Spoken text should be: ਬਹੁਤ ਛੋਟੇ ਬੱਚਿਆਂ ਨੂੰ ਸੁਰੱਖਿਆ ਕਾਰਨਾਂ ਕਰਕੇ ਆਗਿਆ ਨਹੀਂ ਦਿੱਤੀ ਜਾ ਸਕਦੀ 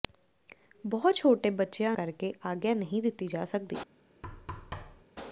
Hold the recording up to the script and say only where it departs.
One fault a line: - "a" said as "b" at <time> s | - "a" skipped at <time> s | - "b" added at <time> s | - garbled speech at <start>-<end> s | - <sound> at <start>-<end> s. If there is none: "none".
- "ਨੂੰ ਸੁਰੱਖਿਆ ਕਾਰਨਾਂ" skipped at 1.9 s
- thud at 4.2-5.1 s